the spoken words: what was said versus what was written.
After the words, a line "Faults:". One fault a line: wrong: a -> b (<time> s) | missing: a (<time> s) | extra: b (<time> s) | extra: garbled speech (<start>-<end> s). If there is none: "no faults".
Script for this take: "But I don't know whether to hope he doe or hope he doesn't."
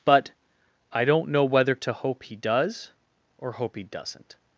"But I don't know whether to hope he does or hope he doesn't."
Faults:
wrong: doe -> does (2.4 s)